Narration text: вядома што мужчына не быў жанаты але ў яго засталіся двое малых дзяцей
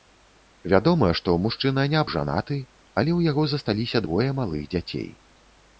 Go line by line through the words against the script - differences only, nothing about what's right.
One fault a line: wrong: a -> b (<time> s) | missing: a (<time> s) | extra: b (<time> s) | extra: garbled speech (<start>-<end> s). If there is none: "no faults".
missing: быў (2.0 s)